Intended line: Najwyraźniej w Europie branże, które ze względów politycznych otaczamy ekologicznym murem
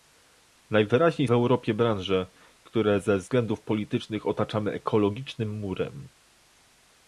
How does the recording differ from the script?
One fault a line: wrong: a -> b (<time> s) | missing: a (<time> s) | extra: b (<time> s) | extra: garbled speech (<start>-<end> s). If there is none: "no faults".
no faults